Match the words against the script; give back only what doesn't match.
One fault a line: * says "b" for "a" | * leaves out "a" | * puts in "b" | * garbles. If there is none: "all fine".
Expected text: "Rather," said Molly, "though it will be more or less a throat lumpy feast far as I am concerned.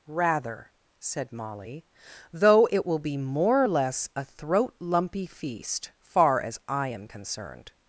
all fine